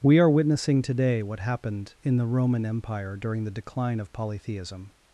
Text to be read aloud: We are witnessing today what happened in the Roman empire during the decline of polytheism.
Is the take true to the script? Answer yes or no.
yes